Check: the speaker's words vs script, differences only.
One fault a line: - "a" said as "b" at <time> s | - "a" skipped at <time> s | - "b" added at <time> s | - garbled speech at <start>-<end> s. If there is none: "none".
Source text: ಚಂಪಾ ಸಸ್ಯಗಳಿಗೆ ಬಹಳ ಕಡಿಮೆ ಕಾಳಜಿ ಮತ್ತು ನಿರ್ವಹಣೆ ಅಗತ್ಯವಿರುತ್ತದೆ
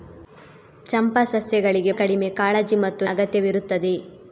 - "ಬಹಳ" skipped at 1.9 s
- "ನಿರ್ವಹಣೆ" skipped at 3.1 s